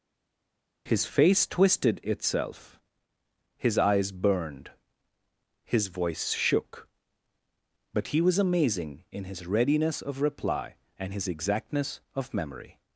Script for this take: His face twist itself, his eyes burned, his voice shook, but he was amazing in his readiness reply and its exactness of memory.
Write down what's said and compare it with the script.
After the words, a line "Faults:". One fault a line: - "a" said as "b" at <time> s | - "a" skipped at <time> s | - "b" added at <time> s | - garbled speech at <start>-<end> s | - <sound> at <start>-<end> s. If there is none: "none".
His face twisted itself, his eyes burned, his voice shook, but he was amazing in his readiness of reply and his exactness of memory.
Faults:
- "twist" said as "twisted" at 1.5 s
- "of" added at 10.0 s
- "its" said as "his" at 11.1 s